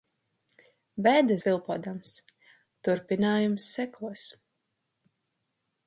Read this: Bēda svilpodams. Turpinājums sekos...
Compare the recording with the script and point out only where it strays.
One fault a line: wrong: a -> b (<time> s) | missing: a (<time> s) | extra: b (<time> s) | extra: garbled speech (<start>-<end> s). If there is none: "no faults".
no faults